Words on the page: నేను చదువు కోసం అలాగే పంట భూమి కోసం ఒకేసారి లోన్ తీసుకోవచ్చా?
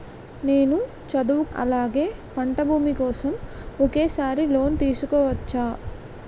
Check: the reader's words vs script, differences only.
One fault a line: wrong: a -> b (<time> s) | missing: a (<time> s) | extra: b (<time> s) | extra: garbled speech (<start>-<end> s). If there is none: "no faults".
missing: కోసం (1.4 s)